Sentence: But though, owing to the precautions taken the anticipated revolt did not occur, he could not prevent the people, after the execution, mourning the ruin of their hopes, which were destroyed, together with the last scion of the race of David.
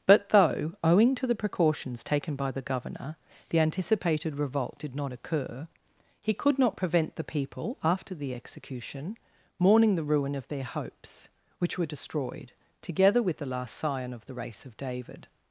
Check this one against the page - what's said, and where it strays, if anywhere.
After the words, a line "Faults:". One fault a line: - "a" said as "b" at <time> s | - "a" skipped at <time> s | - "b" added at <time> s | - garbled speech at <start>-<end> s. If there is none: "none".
But though, owing to the precautions taken by the governor, the anticipated revolt did not occur, he could not prevent the people, after the execution, mourning the ruin of their hopes, which were destroyed, together with the last scion of the race of David.
Faults:
- "by the governor" added at 2.4 s